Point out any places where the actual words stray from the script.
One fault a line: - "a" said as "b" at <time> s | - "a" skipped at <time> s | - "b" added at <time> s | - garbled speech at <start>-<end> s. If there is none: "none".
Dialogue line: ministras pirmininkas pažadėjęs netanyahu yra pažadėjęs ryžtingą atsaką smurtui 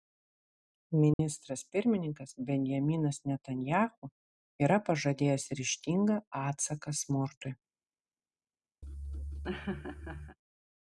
- "pažadėjęs" said as "benjaminas" at 2.5 s